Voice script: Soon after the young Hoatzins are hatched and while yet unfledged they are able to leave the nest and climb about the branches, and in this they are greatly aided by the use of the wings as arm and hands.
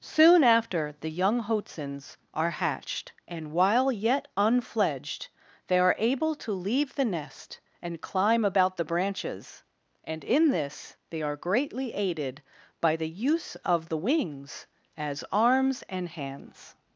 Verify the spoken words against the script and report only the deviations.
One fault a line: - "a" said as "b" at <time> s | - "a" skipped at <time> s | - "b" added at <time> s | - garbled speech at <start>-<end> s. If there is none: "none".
- "arm" said as "arms" at 15.3 s